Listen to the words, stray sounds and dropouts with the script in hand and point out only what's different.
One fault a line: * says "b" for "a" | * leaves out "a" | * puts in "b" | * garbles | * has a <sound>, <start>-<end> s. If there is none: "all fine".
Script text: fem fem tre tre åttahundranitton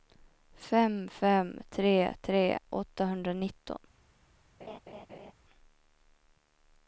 * has a laugh, 4.6-5.3 s